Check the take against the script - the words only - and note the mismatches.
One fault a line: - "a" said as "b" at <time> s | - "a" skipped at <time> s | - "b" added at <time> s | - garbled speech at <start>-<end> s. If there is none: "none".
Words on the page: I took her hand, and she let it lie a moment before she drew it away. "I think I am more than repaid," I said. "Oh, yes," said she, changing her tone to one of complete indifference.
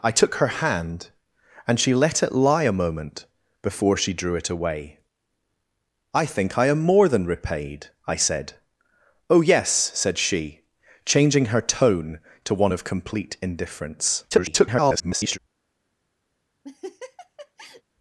- garbled speech at 14.3-15.4 s